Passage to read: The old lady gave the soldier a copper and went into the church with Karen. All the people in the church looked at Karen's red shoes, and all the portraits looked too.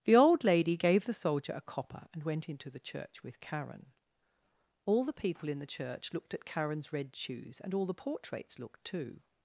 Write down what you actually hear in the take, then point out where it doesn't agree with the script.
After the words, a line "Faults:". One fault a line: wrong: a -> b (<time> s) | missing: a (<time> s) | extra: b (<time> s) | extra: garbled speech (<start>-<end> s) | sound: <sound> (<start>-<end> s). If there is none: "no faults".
The old lady gave the soldier a copper and went into the church with Karen. All the people in the church looked at Karen's red shoes, and all the portraits looked too.
Faults:
no faults